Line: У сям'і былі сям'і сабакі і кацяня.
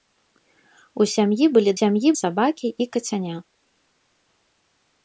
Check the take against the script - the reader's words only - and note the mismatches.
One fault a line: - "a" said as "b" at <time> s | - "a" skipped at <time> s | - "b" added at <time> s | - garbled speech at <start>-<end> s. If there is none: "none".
none